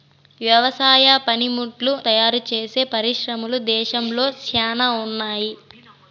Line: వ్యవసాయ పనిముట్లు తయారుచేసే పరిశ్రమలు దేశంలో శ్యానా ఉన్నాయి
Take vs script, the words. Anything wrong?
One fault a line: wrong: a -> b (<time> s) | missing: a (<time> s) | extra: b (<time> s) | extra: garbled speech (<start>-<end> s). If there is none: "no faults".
no faults